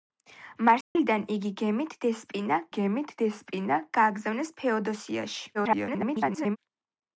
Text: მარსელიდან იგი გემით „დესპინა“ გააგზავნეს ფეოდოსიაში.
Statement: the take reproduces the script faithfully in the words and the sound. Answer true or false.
false